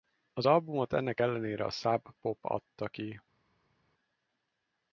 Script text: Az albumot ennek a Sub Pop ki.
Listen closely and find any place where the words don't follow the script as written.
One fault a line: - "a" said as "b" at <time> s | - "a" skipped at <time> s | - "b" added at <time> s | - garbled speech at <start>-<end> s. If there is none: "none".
- "ellenére" added at 1.2 s
- "adta" added at 2.4 s